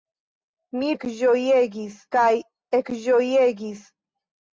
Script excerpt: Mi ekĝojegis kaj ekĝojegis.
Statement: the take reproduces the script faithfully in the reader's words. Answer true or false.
true